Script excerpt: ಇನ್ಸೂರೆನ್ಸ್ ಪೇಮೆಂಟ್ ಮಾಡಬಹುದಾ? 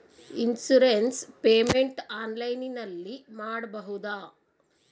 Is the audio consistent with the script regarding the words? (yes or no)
no